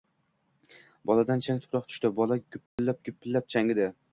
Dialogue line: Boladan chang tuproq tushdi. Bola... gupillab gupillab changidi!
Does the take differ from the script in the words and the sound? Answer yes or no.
yes